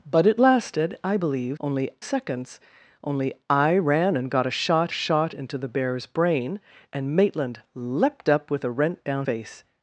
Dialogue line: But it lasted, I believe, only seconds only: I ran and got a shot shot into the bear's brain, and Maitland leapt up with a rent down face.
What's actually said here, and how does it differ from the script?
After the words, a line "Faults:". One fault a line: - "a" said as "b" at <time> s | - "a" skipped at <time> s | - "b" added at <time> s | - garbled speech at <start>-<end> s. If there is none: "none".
But it lasted, I believe, only seconds only: I ran and got a shot shot into the bear's brain, and Maitland leapt up with a rent down face.
Faults:
none